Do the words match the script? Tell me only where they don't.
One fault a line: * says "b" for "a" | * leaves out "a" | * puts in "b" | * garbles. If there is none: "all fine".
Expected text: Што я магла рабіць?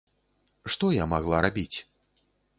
all fine